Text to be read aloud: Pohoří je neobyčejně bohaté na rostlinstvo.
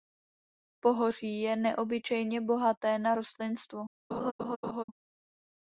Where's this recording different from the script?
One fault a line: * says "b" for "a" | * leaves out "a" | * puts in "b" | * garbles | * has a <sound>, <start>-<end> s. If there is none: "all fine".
* has a laugh, 4.1-4.8 s